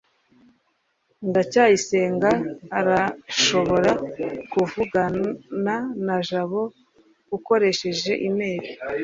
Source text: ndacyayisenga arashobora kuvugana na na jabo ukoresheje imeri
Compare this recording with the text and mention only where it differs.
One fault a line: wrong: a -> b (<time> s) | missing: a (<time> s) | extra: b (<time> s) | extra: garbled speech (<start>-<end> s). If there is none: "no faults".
missing: na (6.2 s)